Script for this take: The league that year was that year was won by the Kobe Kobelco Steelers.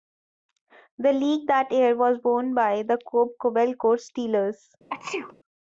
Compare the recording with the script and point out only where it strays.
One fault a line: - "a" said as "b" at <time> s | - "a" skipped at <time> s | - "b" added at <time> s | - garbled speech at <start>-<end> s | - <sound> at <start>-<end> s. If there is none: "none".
- "that year was" skipped at 2.2 s
- sneeze at 4.9-5.4 s